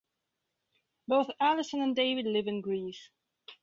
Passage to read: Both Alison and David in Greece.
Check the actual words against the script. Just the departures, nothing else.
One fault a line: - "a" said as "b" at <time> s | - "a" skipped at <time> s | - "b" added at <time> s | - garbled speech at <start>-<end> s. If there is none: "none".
- "live" added at 2.2 s